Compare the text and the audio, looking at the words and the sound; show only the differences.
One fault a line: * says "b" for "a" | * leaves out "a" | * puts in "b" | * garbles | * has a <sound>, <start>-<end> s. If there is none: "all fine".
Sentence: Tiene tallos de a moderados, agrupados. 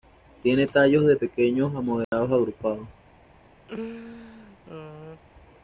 * puts in "pequeños"
* has a dropout, 2.0-2.1 s
* has a laugh, 3.7-5.2 s